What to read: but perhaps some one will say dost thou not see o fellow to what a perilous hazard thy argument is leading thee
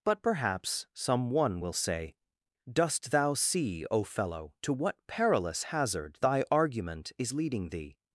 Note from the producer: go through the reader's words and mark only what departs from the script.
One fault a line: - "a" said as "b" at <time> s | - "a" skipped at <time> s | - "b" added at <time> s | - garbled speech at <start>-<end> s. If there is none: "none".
- "not" skipped at 3.3 s
- "a" skipped at 5.0 s